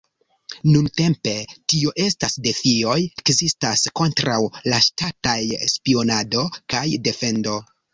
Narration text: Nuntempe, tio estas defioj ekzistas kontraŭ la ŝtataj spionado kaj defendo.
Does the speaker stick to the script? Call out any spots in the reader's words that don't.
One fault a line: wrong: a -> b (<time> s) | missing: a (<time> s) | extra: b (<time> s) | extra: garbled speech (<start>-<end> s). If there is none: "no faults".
no faults